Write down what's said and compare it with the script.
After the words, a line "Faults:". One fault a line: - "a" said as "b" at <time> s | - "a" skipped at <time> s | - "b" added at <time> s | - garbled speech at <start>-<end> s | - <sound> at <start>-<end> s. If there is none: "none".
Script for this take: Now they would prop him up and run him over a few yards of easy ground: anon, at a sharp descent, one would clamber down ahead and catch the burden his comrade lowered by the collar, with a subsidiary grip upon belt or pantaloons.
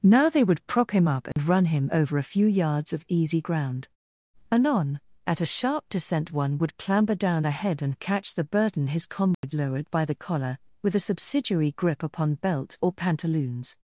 Now they would prop him up and run him over a few yards of easy ground: anon, at a sharp descent, one would clamber down ahead and catch the burden his comrade lowered by the collar, with a subsidiary grip upon belt or pantaloons.
Faults:
- dropout at 1.3-1.4 s
- dropout at 9.3-9.4 s